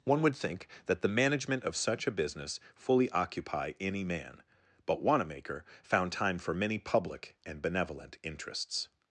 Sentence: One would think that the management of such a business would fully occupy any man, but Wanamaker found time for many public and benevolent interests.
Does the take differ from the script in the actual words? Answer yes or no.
yes